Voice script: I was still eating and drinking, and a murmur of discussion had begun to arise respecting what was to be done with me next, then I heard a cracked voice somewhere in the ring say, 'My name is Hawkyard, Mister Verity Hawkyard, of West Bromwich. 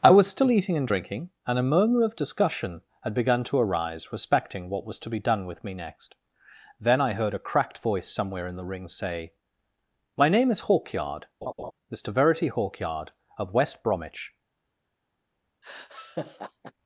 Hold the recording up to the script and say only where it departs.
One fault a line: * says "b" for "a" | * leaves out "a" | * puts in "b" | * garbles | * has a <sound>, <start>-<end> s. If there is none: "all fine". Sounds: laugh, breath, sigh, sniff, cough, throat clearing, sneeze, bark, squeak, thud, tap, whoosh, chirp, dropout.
* has a laugh, 11.4-11.7 s
* has a laugh, 15.6-16.7 s